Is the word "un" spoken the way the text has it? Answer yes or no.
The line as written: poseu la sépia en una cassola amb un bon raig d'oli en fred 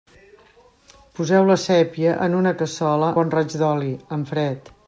no